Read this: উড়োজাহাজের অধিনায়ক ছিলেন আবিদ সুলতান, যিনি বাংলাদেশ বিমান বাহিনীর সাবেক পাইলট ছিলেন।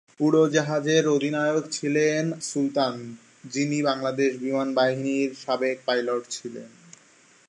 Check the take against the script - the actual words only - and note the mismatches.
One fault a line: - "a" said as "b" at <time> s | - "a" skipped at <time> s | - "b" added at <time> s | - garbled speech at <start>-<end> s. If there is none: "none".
- "আবিদ" skipped at 2.2 s